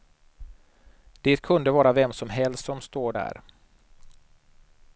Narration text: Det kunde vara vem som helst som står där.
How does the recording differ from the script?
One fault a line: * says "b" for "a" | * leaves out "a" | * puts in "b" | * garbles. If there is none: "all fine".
all fine